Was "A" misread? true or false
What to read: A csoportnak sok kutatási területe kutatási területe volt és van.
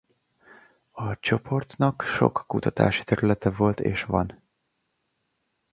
false